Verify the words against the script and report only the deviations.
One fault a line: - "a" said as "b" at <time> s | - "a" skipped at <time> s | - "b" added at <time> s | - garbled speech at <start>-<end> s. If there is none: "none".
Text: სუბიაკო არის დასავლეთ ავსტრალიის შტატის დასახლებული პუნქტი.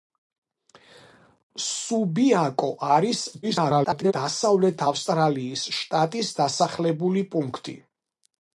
- garbled speech at 3.4-4.1 s